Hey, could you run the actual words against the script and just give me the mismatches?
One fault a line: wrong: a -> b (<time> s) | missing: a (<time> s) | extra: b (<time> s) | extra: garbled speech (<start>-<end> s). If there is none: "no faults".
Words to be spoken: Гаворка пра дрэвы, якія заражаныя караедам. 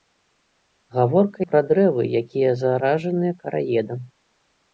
no faults